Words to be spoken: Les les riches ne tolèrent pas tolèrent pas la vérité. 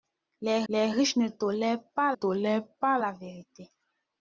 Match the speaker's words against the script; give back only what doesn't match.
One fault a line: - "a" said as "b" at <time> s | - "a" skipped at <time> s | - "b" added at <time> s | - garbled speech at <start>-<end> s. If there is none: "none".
none